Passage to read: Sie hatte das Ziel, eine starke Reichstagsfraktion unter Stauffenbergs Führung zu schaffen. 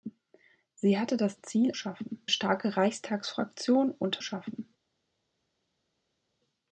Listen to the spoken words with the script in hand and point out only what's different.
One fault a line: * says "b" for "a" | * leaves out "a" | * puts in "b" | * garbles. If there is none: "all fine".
* says "schaffen" for "eine"
* leaves out "Stauffenbergs Führung zu"